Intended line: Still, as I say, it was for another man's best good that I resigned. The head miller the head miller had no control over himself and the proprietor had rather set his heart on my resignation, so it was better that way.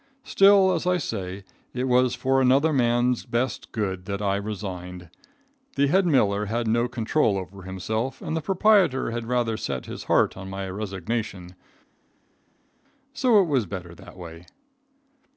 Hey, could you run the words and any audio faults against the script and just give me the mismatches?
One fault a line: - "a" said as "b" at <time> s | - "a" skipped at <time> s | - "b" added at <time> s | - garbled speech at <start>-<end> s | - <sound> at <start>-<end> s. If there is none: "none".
- "the head miller" skipped at 6.4 s